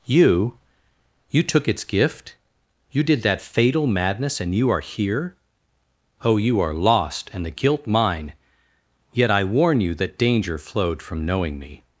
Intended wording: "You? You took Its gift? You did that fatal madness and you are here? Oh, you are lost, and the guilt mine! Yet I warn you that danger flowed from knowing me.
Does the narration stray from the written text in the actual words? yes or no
no